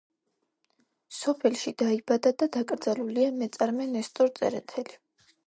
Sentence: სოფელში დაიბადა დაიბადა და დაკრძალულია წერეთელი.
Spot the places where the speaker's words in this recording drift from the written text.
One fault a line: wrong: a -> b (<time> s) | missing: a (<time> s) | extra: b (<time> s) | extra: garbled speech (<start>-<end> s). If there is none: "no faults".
missing: დაიბადა (2.3 s)
extra: მეწარმე ნესტორ (3.4 s)